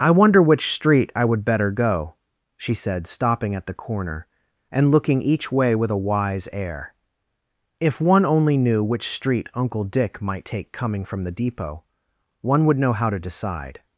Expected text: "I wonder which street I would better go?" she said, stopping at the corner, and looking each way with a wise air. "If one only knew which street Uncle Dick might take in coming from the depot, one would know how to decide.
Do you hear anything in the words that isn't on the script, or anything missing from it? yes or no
yes